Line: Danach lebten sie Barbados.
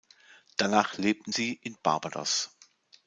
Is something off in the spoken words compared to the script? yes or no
yes